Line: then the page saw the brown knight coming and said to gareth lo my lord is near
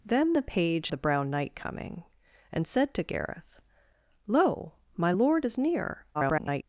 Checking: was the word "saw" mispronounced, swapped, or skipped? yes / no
yes